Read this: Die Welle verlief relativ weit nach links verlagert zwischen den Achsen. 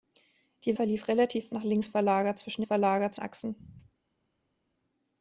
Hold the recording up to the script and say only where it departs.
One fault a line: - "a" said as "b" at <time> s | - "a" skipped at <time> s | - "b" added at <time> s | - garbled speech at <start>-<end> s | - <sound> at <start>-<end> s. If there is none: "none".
- "Welle" skipped at 0.8 s
- "weit" skipped at 1.5 s
- "den" said as "verlagert" at 2.6 s